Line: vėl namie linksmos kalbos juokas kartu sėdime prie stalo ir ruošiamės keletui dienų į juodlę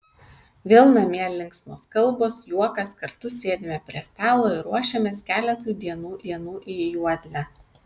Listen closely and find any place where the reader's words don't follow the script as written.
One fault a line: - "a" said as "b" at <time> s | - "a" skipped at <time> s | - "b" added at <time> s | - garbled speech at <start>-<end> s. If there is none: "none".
- "dienų" added at 6.3 s